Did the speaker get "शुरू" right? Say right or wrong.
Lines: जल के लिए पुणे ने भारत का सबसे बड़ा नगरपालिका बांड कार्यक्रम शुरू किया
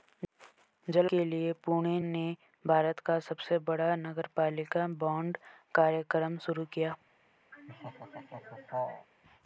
right